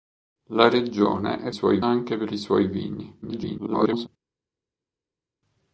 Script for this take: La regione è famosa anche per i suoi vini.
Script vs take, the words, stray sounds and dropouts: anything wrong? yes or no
yes